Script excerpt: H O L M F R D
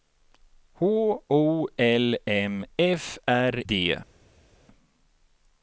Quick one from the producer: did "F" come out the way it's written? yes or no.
yes